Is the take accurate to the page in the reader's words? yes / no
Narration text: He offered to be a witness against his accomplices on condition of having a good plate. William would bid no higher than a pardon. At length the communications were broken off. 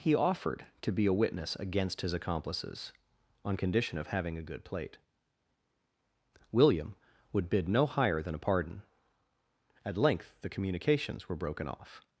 yes